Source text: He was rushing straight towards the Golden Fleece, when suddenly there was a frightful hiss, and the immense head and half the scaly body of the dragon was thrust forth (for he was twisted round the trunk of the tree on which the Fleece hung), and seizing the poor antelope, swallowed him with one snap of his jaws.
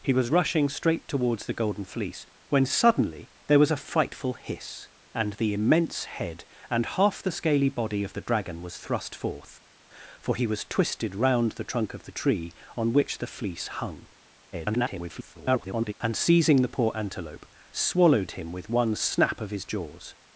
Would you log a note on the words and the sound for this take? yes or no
yes